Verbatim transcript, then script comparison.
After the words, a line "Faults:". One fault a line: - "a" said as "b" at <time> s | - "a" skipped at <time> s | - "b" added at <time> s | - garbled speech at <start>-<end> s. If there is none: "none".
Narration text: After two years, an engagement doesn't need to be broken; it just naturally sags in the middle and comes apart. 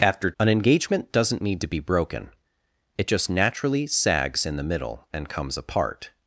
After an engagement doesn't need to be broken; it just naturally sags in the middle and comes apart.
Faults:
- "two years" skipped at 0.3 s